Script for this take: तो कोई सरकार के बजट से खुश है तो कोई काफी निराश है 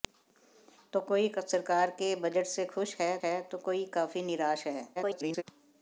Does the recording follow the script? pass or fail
fail